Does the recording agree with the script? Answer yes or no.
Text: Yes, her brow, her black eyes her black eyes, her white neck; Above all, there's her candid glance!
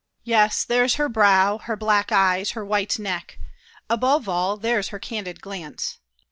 no